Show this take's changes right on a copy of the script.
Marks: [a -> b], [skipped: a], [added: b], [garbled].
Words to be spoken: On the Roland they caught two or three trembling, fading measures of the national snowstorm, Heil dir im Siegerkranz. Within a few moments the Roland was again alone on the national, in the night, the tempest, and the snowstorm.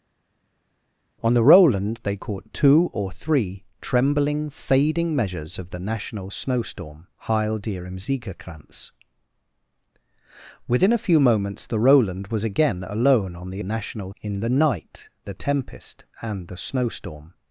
On the Roland they caught two or three trembling, fading measures of the national snowstorm, Heil dir im Siegerkranz. Within a few moments the Roland was again alone on the national, in the night, the tempest, and the snowstorm.